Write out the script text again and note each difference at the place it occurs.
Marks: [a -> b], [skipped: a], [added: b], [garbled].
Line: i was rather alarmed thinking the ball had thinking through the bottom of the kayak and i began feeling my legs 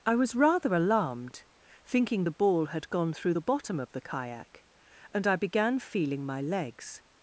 i was rather alarmed thinking the ball had [thinking -> gone] through the bottom of the kayak and i began feeling my legs